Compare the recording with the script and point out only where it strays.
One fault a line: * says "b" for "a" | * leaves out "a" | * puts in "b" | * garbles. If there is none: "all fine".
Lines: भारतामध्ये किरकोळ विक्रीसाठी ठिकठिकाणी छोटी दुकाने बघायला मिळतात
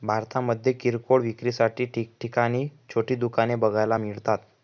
all fine